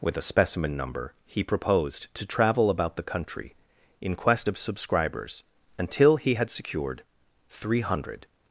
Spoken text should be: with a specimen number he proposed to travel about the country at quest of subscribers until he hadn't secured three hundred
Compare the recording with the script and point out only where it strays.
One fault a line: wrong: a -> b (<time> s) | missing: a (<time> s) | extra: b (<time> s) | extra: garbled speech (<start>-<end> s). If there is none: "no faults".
wrong: at -> in (4.0 s)
wrong: hadn't -> had (6.3 s)